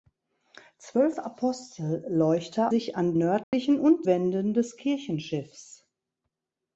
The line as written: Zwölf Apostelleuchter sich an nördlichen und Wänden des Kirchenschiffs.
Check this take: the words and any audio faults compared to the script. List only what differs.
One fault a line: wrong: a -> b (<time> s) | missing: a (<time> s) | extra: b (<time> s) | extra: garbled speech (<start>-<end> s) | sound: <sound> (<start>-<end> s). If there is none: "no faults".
sound: dropout (3.4-3.5 s)